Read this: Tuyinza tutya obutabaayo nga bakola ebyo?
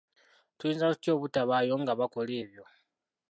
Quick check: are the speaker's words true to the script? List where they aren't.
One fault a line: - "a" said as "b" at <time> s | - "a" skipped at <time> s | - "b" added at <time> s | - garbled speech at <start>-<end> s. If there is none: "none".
none